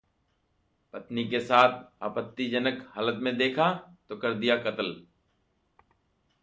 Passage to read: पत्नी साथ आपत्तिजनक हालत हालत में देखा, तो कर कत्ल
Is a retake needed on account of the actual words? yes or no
yes